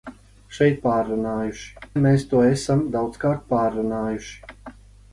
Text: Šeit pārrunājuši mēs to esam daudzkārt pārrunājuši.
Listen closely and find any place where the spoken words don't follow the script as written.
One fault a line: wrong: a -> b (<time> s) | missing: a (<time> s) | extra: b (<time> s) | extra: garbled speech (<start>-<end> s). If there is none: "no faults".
no faults